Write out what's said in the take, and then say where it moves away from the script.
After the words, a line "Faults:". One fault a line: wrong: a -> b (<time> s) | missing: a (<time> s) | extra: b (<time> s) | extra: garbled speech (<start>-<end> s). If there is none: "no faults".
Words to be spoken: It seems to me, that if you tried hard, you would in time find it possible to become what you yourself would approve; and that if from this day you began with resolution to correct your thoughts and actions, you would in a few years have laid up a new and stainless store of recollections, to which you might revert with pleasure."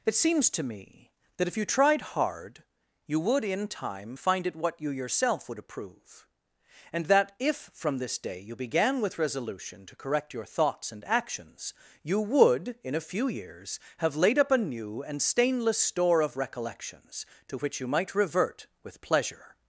It seems to me, that if you tried hard, you would in time find it what you yourself would approve; and that if from this day you began with resolution to correct your thoughts and actions, you would in a few years have laid up a new and stainless store of recollections, to which you might revert with pleasure."
Faults:
missing: possible to become (4.6 s)